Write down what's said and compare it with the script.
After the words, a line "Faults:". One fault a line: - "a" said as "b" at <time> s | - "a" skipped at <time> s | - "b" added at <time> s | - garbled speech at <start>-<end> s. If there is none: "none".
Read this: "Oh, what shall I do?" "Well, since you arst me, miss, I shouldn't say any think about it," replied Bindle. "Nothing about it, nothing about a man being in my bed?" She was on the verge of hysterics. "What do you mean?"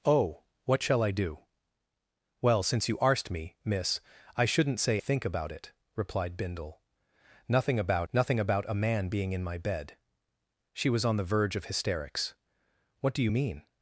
"Oh, what shall I do?" "Well, since you arst me, miss, I shouldn't say think about it," replied Bindle. "Nothing about nothing about a man being in my bed?" She was on the verge of hysterics. "What do you mean?"
Faults:
- "any" skipped at 5.0 s
- "it" skipped at 8.1 s